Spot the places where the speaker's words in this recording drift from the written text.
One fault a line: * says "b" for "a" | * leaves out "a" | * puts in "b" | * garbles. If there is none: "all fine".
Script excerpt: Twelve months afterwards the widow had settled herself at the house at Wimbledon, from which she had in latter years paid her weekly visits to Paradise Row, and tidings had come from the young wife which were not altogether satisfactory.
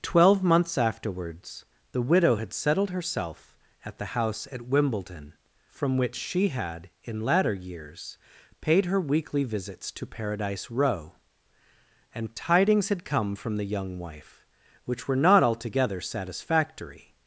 all fine